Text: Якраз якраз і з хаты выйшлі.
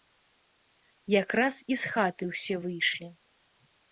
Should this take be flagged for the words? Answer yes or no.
yes